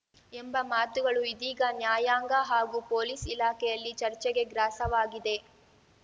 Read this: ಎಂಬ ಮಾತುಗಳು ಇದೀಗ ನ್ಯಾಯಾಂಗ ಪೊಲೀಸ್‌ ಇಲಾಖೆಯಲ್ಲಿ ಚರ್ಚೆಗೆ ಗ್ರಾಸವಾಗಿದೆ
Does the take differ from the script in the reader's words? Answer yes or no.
yes